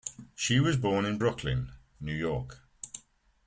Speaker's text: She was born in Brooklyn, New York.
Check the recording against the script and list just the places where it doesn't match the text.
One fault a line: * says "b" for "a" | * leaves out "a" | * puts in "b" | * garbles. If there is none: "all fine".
all fine